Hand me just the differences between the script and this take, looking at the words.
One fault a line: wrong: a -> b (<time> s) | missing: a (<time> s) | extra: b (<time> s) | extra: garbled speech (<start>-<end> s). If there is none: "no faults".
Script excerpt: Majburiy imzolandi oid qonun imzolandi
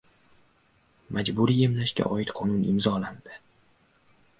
wrong: imzolandi -> emlashga (1.7 s)